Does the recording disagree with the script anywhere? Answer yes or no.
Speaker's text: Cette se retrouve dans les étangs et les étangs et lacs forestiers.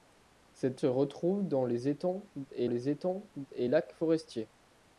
no